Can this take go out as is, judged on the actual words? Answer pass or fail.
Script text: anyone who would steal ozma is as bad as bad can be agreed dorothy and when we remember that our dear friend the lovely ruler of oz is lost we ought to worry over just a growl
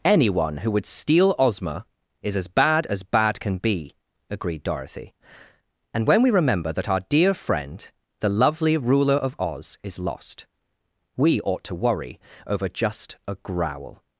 pass